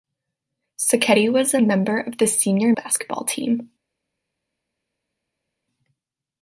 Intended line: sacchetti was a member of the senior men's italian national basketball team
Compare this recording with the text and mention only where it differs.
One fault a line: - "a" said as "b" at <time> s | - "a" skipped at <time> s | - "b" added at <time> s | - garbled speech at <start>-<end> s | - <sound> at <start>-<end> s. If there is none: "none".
- "men's italian national" skipped at 2.7 s